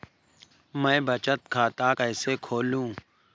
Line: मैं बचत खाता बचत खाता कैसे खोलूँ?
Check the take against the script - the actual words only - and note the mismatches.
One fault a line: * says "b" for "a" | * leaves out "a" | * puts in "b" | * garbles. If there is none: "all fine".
* leaves out "बचत खाता"